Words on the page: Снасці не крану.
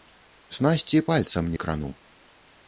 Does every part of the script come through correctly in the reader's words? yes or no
no